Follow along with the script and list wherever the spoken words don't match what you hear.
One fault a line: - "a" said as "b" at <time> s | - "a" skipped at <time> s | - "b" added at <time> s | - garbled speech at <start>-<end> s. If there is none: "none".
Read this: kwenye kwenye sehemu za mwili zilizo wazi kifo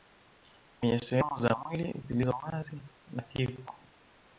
- "kwenye" skipped at 1.0 s
- "na" added at 3.1 s